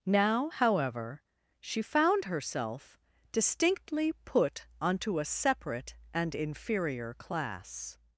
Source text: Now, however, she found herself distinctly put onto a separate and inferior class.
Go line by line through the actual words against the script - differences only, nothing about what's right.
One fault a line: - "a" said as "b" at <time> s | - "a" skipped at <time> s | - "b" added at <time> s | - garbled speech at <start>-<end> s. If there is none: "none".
none